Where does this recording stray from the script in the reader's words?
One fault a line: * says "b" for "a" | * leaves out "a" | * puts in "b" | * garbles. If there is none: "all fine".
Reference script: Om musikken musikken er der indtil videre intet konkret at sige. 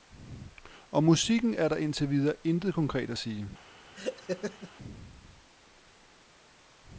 * leaves out "musikken"